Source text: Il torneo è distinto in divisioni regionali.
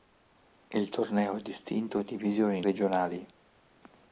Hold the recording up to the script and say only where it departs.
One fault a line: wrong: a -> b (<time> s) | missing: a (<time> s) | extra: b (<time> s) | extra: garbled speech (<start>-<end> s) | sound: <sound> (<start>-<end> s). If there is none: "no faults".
no faults